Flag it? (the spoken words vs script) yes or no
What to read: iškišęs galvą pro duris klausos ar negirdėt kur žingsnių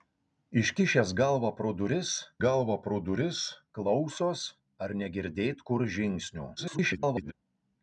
yes